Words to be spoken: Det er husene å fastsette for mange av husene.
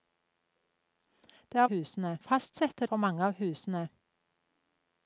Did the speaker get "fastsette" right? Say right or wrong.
right